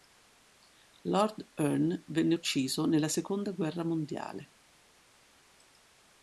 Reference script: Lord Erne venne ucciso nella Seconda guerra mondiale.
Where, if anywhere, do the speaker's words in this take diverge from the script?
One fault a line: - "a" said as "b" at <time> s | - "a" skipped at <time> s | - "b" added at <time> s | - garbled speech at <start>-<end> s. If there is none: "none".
none